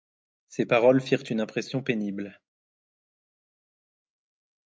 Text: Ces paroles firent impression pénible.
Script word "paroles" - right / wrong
right